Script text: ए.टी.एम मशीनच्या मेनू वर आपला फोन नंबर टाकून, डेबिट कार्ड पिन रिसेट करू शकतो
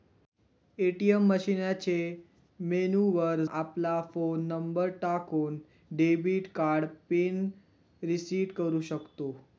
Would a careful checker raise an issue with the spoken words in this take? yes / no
no